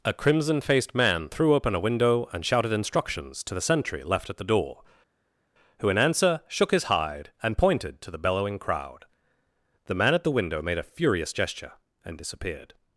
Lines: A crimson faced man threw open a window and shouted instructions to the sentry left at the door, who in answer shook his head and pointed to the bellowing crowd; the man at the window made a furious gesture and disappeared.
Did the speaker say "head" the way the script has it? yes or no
no